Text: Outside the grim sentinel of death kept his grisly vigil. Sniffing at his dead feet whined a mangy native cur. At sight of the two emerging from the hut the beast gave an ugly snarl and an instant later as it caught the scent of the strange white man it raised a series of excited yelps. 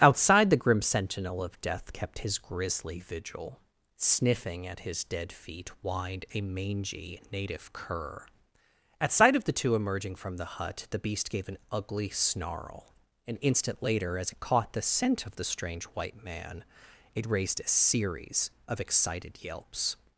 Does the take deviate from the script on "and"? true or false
true